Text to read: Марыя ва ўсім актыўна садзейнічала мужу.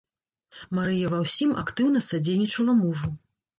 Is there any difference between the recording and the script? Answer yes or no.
no